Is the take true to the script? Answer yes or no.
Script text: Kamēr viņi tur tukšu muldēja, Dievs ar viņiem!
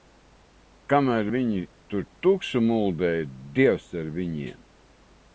yes